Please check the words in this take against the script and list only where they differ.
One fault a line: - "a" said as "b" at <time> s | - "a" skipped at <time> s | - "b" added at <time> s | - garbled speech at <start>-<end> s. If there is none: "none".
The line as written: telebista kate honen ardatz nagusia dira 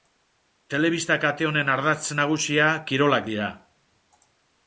- "kirolak" added at 2.9 s